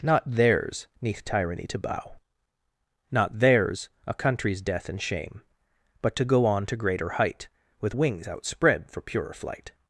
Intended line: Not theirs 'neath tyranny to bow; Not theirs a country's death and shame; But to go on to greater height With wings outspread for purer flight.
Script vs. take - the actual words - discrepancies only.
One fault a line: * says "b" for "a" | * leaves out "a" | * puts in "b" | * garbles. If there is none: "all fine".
all fine